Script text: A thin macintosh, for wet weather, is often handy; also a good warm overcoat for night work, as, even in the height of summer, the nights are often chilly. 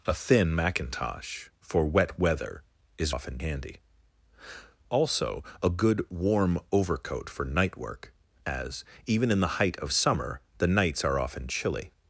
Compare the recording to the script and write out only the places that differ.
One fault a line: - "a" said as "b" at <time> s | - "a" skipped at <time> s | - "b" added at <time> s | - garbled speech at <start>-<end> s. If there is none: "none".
none